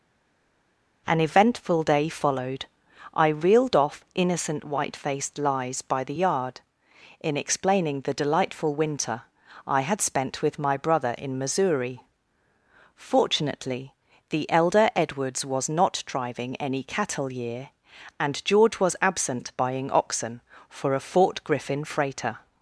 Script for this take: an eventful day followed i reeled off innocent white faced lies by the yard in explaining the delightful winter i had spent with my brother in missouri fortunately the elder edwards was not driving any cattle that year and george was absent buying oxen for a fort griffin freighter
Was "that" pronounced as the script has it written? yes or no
no